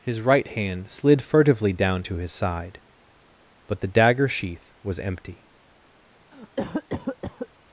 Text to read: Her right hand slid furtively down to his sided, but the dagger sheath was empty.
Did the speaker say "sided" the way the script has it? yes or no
no